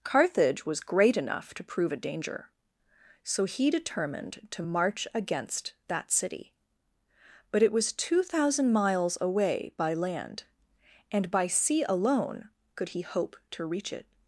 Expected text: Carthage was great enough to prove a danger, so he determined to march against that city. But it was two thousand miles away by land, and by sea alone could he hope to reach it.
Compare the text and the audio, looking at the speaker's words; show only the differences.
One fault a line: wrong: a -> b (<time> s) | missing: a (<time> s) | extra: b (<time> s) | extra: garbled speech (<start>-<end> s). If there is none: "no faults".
no faults